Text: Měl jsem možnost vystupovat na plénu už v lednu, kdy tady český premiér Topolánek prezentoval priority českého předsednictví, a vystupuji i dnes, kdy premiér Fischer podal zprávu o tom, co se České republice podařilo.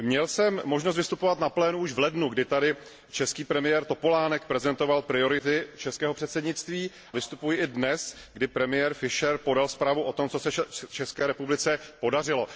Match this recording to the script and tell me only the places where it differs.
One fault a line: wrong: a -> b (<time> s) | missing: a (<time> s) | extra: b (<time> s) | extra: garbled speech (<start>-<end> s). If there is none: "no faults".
missing: a (6.9 s)